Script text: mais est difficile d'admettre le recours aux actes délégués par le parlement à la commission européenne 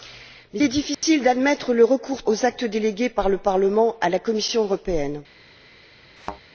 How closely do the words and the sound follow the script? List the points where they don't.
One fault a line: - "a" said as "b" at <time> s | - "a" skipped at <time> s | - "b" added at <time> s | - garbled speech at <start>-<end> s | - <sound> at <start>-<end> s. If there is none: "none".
- dropout at 0.9-1.0 s
- thud at 6.2-6.4 s